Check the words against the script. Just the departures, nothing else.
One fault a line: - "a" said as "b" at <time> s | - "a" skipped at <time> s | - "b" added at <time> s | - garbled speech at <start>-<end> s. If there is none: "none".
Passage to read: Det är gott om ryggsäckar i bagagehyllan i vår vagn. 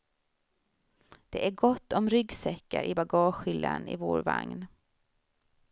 none